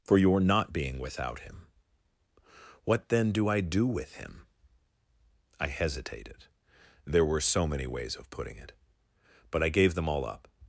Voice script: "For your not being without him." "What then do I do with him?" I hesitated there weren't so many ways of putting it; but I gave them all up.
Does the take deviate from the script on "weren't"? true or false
true